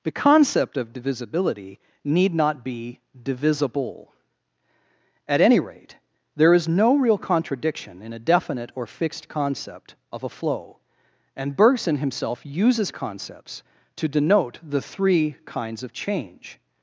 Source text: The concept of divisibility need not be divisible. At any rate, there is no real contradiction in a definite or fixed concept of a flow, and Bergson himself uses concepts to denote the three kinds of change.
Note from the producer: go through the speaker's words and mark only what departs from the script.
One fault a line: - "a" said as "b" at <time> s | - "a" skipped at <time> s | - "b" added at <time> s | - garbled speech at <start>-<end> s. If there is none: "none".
none